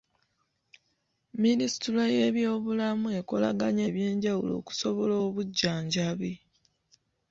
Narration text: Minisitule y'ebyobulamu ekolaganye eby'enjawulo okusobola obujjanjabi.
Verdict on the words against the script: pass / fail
pass